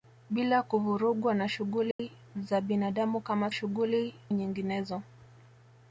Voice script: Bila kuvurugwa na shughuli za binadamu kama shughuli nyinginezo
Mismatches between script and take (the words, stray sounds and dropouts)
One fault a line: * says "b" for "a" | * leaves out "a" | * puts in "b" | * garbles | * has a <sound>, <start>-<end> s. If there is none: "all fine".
* has a dropout, 1.9-2.0 s